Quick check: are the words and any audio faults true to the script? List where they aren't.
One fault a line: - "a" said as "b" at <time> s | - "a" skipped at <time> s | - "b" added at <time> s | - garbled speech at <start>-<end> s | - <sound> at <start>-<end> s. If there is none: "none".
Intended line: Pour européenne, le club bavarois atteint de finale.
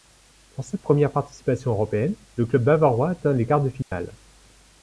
- "cette première participation" added at 0.6 s
- "les quarts" added at 3.3 s
- dropout at 3.8-3.9 s